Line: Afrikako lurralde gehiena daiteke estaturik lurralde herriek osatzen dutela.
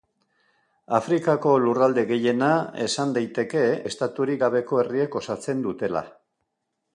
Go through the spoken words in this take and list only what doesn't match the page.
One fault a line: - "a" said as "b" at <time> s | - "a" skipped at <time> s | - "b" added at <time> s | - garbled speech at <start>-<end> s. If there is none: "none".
- "esan" added at 2.9 s
- "lurralde" said as "gabeko" at 4.4 s